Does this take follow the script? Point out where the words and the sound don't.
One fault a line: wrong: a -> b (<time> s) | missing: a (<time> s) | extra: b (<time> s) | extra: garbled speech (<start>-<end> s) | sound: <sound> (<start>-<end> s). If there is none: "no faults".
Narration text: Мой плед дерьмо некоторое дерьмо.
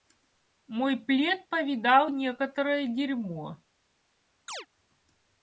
wrong: дерьмо -> повидал (1.5 s)
sound: chirp (4.5-4.7 s)